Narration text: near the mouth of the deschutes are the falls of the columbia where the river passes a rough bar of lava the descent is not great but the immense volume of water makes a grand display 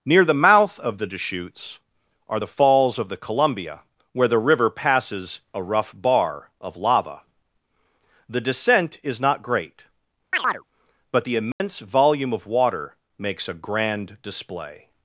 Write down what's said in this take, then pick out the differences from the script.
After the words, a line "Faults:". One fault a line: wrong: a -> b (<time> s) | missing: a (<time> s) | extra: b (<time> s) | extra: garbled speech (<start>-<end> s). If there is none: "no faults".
near the mouth of the deschutes are the falls of the columbia where the river passes a rough bar of lava the descent is not great but the immense volume of water makes a grand display
Faults:
no faults